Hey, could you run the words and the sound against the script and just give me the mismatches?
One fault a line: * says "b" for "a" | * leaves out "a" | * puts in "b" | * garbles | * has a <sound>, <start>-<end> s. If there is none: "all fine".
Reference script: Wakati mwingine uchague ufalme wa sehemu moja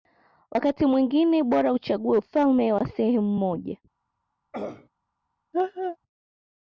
* puts in "bora"
* has a throat clearing, 4.5-4.9 s
* has a laugh, 5.5-6.0 s